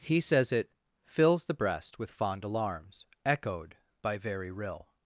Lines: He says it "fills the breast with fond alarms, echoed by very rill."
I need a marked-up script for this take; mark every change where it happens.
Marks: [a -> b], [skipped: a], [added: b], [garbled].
He says it "fills the breast with fond alarms, echoed by very rill."